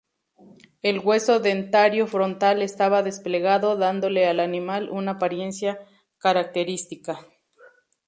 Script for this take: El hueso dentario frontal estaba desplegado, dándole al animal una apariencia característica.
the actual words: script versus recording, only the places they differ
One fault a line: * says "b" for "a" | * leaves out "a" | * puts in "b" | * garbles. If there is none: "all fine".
all fine